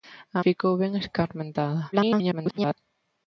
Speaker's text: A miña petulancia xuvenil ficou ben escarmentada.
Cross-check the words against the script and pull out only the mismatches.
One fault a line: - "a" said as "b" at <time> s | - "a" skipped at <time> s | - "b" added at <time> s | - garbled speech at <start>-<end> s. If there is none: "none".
- "miña petulancia xuvenil" skipped at 0.4 s
- garbled speech at 1.9-2.7 s